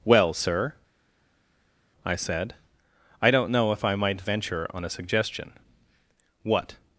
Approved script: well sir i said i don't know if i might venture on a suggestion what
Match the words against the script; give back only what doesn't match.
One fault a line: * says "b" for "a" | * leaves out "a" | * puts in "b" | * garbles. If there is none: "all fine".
all fine